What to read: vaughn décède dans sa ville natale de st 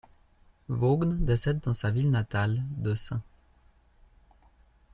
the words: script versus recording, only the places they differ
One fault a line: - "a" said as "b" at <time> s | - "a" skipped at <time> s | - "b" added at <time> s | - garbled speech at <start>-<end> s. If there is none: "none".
none